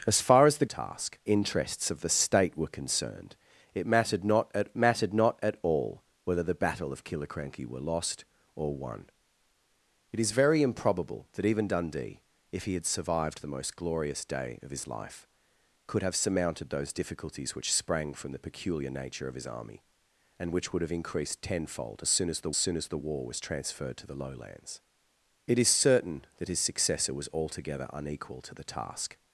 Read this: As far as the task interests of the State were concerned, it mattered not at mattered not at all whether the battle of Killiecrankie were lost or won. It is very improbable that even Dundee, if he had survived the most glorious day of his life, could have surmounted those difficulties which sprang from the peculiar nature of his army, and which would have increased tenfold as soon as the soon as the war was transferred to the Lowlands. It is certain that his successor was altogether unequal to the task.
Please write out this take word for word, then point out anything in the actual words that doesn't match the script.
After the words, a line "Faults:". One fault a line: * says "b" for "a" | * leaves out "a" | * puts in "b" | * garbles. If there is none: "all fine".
As far as the task interests of the State were concerned, it mattered not at mattered not at all whether the battle of Killiecrankie were lost or won. It is very improbable that even Dundee, if he had survived the most glorious day of his life, could have surmounted those difficulties which sprang from the peculiar nature of his army, and which would have increased tenfold as soon as the soon as the war was transferred to the Lowlands. It is certain that his successor was altogether unequal to the task.
Faults:
all fine